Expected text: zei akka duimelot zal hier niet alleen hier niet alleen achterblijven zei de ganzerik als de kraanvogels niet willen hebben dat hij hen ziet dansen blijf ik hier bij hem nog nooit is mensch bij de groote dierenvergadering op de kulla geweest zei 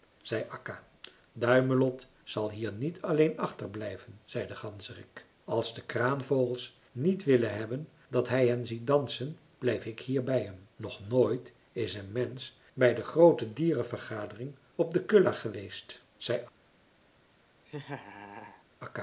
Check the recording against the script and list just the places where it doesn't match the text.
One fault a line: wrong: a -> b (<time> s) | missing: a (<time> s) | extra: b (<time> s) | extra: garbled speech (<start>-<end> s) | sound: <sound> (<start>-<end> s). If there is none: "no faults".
missing: hier niet alleen (3.4 s)
extra: een (11.9 s)
sound: laugh (17.7-18.6 s)